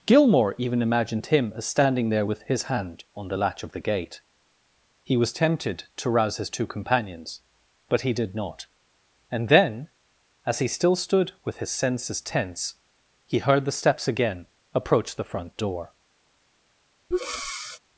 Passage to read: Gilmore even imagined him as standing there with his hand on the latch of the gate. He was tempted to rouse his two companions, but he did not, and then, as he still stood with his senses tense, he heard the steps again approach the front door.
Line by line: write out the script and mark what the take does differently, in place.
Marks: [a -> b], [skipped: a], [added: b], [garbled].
Gilmore even imagined him as standing there with his hand on the latch of the gate. He was tempted to rouse his two companions, but he did not, and then, as he still stood with his senses tense, he heard the steps again approach the front door.